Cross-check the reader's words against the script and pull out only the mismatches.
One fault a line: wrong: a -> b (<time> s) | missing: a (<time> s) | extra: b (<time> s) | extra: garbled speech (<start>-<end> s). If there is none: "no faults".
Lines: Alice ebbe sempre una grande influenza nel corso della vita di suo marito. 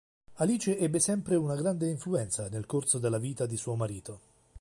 no faults